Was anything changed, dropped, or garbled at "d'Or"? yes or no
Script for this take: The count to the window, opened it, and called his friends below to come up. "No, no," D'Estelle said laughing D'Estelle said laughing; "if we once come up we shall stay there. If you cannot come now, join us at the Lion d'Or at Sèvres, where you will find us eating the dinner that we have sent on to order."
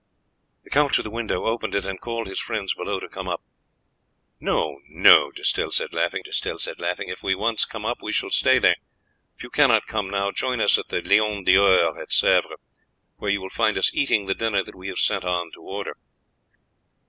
no